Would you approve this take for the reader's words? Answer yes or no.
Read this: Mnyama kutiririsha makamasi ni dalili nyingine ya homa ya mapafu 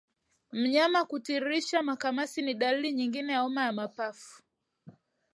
yes